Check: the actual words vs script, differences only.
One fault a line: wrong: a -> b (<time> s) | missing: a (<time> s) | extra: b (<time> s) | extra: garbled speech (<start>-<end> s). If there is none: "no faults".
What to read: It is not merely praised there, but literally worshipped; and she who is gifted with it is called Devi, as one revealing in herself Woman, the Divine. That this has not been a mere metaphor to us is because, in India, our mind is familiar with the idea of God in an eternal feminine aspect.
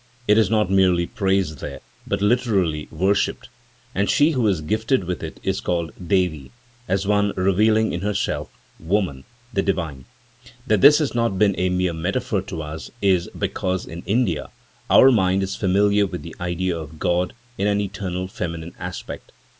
no faults